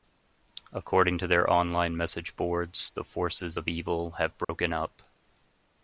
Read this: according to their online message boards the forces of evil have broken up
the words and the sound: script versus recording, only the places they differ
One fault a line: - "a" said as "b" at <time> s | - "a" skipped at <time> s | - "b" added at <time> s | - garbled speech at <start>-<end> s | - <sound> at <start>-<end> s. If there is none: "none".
- dropout at 4.4-4.5 s